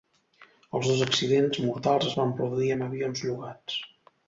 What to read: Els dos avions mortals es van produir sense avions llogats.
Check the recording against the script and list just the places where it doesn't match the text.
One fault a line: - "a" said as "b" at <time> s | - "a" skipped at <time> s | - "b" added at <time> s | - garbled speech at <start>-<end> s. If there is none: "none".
- "avions" said as "accidents" at 1.1 s
- "sense" said as "amb" at 2.8 s